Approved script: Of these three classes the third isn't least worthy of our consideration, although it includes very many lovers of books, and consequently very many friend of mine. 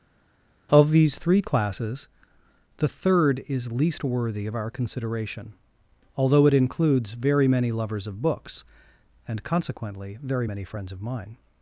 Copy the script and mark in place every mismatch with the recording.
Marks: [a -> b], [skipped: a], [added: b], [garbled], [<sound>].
Of these three classes the third [isn't -> is] least worthy of our consideration, although it includes very many lovers of books, and consequently very many [friend -> friends] of mine.